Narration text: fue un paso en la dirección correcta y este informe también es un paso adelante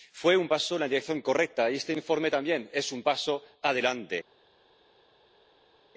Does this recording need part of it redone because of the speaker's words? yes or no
no